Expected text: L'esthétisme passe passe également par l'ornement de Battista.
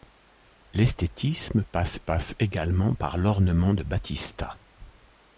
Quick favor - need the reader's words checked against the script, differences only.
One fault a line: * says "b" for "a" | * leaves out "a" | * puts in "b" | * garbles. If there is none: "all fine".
all fine